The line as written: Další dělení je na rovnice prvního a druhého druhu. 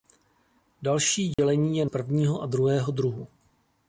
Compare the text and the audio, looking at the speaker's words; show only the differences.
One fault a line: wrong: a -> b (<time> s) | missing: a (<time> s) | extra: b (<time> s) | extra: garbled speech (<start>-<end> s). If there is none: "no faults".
missing: na rovnice (1.9 s)